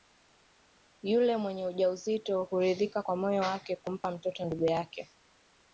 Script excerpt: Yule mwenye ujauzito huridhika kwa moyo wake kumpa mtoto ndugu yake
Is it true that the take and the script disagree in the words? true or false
false